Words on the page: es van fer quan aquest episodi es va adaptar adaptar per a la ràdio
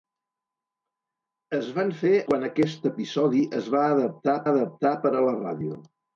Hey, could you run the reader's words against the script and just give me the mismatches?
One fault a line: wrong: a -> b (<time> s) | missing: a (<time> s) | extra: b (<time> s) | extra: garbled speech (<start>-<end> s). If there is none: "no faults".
no faults